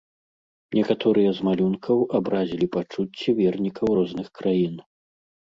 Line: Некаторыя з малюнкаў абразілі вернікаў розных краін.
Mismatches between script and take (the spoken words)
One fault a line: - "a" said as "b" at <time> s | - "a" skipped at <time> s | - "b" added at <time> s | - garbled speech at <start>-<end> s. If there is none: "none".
- "пачуцці" added at 2.8 s